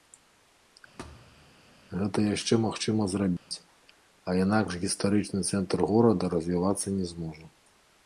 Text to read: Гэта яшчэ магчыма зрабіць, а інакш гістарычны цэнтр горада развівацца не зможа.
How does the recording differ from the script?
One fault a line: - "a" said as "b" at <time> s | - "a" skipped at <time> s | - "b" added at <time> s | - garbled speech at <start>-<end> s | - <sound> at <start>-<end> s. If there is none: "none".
- thud at 1.0-1.5 s
- dropout at 3.4-3.5 s